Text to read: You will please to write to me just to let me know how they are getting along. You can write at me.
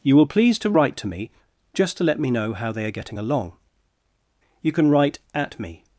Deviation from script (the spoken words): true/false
false